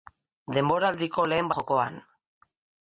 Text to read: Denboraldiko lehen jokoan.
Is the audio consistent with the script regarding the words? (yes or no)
yes